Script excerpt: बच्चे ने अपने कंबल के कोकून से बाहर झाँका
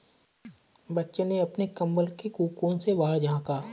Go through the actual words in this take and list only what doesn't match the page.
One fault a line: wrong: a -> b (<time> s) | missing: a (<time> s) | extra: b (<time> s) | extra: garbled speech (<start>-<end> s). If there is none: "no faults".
no faults